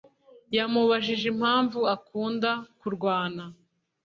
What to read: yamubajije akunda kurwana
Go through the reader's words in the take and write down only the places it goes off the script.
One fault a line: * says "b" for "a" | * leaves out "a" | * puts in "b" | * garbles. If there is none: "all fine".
* puts in "impamvu"